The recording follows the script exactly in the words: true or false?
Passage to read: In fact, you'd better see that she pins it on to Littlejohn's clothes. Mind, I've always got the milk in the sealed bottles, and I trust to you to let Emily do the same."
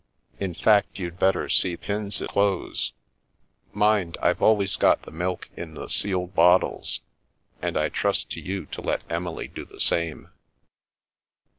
false